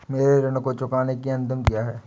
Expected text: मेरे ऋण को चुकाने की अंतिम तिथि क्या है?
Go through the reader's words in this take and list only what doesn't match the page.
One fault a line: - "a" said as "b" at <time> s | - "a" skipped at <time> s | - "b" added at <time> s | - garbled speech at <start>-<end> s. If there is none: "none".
- "तिथि" skipped at 1.6 s